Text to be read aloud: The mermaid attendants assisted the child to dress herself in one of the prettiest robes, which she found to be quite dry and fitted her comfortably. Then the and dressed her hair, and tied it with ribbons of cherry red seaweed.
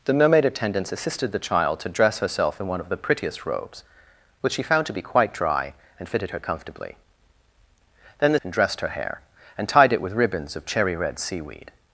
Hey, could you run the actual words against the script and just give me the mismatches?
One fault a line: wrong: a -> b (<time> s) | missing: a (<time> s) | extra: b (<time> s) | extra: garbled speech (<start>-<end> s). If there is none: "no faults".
no faults